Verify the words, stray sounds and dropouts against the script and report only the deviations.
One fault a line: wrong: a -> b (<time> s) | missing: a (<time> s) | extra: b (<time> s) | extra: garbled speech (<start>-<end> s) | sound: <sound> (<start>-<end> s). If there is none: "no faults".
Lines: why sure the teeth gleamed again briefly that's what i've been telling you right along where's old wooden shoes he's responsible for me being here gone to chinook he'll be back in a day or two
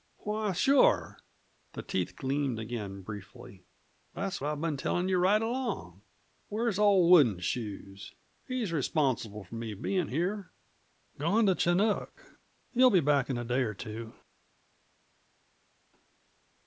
missing: what (4.4 s)